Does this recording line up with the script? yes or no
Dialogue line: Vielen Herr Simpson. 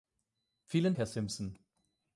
yes